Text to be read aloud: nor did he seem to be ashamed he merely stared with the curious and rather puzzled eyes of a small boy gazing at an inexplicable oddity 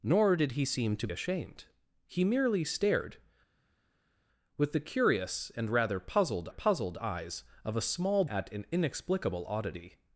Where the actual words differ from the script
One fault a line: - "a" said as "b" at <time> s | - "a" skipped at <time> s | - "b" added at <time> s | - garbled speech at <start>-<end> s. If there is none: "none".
- "be" skipped at 1.1 s
- "puzzled" added at 6.5 s
- "boy gazing" skipped at 8.2 s